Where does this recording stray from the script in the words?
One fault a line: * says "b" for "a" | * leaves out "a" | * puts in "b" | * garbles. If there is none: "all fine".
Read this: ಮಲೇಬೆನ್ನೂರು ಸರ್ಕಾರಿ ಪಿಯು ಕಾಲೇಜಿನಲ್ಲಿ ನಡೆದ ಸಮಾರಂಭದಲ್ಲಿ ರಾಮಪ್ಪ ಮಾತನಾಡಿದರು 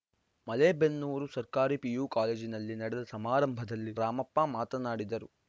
all fine